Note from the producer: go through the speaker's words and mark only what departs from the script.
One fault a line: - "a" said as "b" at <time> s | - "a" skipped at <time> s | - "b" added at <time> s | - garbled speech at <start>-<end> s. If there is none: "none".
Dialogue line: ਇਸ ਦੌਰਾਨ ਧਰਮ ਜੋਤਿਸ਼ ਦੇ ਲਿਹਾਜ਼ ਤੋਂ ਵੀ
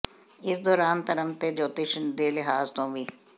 - "ਤੇ" added at 1.4 s